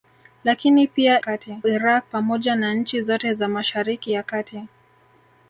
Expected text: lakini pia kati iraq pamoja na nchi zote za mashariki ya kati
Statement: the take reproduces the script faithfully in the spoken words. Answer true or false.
true